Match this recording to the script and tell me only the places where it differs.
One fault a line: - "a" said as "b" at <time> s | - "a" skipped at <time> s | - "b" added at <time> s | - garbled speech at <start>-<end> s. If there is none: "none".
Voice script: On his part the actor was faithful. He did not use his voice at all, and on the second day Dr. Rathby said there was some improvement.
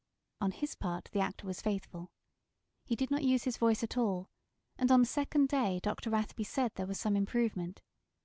none